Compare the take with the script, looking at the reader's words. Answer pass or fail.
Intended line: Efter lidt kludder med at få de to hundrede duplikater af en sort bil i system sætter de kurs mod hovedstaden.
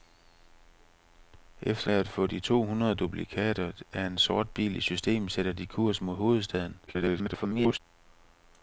fail